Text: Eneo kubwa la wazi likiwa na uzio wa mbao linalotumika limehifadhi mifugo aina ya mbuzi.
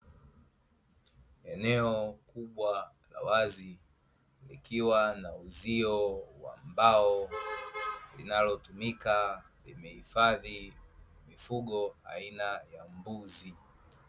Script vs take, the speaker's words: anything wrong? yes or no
no